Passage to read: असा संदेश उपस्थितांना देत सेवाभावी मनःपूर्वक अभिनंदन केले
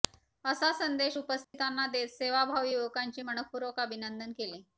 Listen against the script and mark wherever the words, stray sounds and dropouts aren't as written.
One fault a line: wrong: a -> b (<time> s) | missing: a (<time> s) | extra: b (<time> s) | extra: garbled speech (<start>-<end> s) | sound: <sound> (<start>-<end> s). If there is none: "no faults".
sound: dropout (1.4-1.5 s)
extra: युवकांचे (2.7 s)